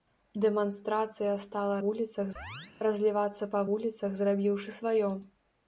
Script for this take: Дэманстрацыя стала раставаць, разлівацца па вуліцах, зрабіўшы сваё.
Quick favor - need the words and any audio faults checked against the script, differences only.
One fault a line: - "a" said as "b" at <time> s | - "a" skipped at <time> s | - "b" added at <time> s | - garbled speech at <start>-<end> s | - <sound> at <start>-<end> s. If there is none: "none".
- "раставаць" said as "вуліцах" at 1.9 s
- chirp at 2.4-2.7 s